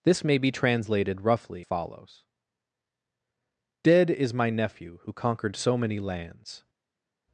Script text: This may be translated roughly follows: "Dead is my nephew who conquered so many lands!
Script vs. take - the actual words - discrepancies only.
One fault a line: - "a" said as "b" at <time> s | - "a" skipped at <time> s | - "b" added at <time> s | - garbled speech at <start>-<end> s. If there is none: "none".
none